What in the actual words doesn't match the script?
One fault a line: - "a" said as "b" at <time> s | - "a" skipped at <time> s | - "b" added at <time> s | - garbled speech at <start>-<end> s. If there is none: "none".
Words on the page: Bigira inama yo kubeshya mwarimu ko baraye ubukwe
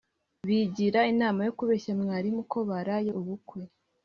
none